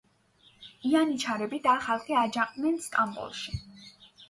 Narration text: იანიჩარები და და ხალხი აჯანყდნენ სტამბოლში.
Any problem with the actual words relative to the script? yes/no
yes